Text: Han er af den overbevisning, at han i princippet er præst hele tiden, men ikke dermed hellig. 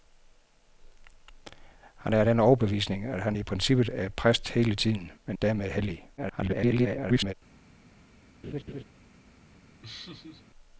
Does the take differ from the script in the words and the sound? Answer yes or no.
yes